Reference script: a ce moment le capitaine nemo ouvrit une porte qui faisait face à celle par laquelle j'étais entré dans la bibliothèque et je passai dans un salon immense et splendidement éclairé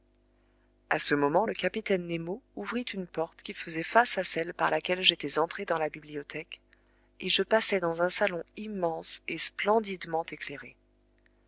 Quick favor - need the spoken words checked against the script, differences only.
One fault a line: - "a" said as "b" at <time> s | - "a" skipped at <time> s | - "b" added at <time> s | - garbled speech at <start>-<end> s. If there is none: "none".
none